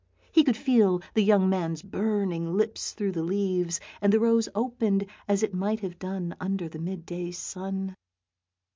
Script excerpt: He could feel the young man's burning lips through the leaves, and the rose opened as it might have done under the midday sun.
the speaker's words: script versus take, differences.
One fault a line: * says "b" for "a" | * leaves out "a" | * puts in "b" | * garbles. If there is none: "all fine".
all fine